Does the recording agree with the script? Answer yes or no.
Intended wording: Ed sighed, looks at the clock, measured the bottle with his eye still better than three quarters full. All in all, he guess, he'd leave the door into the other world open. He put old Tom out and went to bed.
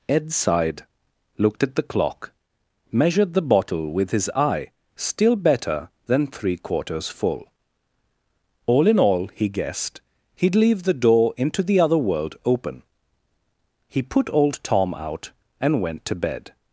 no